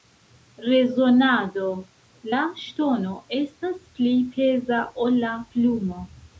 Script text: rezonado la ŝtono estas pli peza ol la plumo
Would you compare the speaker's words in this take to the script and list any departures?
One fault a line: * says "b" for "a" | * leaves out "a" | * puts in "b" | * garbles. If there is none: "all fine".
all fine